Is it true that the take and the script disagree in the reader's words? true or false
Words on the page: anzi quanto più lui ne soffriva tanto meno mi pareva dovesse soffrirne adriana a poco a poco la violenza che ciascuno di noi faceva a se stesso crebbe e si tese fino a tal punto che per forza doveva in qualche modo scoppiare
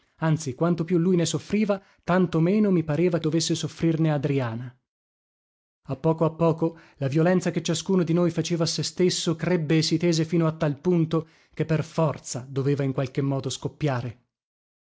false